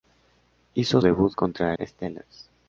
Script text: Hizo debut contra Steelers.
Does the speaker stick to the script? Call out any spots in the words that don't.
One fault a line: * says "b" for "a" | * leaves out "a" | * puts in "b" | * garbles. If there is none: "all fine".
all fine